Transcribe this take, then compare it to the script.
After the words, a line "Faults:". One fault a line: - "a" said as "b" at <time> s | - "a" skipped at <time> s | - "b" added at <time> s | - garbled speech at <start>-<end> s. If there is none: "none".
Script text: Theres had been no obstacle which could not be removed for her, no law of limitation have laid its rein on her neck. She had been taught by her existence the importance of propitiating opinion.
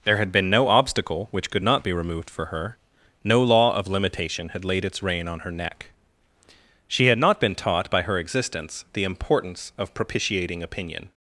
There had been no obstacle which could not be removed for her, no law of limitation had laid its rein on her neck. She had not been taught by her existence the importance of propitiating opinion.
Faults:
- "Theres" said as "There" at 0.0 s
- "have" said as "had" at 4.5 s
- "not" added at 7.2 s